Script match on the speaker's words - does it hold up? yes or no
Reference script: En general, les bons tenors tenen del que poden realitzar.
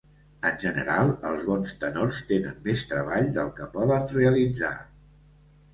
no